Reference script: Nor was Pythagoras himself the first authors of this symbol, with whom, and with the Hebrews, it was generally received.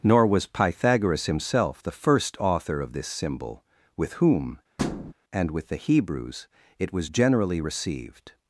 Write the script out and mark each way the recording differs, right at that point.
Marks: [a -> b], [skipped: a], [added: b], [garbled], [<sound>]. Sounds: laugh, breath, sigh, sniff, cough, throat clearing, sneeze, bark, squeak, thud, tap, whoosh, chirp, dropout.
Nor was Pythagoras himself the first [authors -> author] of this symbol, with whom, [thud] and with the Hebrews, it was generally received.